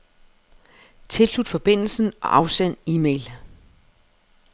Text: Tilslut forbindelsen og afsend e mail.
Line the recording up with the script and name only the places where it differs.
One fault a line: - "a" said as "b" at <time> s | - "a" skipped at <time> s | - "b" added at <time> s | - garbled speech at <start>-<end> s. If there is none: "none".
none